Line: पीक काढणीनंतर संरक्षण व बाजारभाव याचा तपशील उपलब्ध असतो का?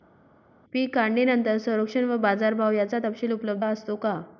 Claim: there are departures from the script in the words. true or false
false